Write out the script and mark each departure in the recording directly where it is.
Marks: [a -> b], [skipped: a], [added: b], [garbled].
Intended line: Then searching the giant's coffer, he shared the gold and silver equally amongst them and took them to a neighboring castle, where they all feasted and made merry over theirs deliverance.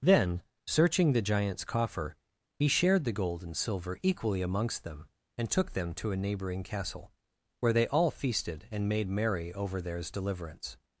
Then searching the giant's coffer, he shared the gold and silver equally amongst them and took them to a neighboring castle, where they all feasted and made merry over theirs deliverance.